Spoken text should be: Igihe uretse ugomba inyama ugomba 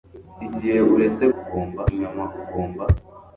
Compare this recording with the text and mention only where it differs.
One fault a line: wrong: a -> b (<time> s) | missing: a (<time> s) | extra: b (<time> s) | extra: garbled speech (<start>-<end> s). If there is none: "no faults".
no faults